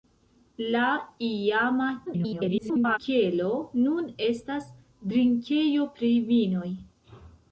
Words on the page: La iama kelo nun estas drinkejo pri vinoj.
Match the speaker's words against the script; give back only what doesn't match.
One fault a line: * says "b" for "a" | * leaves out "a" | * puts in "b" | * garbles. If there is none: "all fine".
* garbles